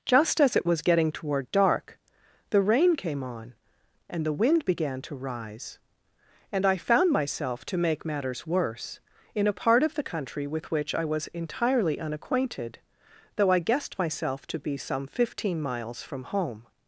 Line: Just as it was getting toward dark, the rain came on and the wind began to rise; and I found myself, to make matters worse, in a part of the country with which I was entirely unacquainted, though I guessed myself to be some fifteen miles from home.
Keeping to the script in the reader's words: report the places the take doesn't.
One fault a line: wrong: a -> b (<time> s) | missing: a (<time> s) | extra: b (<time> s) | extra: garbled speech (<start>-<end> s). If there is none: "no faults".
no faults